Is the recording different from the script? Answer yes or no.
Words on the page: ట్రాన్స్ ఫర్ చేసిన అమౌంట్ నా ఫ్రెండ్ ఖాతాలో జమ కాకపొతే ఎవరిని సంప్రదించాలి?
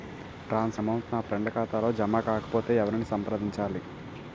yes